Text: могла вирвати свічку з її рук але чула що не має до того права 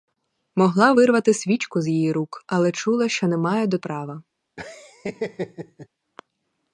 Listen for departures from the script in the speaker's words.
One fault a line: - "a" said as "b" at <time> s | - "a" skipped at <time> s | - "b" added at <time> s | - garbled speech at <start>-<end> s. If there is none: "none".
- "того" skipped at 3.8 s